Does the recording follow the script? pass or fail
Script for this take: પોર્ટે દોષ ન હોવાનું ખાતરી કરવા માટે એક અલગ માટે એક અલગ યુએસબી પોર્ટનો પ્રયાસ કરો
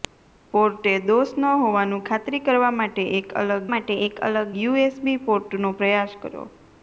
pass